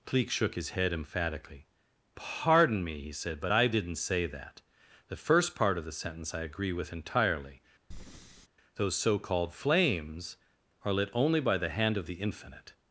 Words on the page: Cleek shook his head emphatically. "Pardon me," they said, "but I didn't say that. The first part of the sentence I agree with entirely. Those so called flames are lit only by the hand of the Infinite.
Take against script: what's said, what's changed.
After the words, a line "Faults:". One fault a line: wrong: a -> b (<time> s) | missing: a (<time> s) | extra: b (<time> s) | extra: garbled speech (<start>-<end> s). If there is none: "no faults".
Cleek shook his head emphatically. "Pardon me," he said, "but I didn't say that. The first part of the sentence I agree with entirely. Those so called flames are lit only by the hand of the Infinite.
Faults:
wrong: they -> he (3.0 s)